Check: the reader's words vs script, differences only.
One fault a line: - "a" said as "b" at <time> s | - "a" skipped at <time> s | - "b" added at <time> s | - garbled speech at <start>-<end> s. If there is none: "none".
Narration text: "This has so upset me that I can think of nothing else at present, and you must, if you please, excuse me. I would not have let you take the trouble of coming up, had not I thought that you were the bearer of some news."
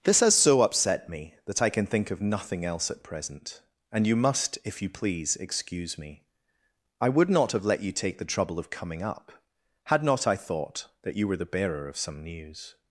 none